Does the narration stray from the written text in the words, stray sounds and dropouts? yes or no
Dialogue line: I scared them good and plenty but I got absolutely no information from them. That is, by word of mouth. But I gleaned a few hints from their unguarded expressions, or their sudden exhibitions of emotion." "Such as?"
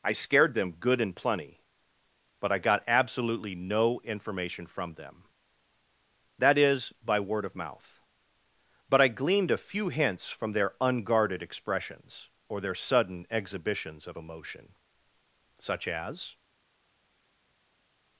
no